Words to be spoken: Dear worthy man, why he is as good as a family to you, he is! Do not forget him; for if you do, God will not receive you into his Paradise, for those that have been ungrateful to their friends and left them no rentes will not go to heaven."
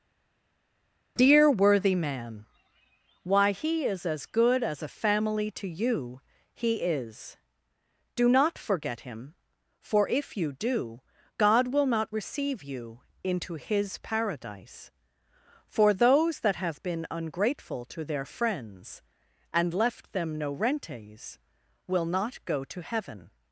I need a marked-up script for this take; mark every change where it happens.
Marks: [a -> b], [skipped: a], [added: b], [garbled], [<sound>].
Dear worthy man, why he is as good as a family to you, he is! Do not forget him; for if you do, God will not receive you into his Paradise, for those that have been ungrateful to their friends and left them no rentes will not go to heaven."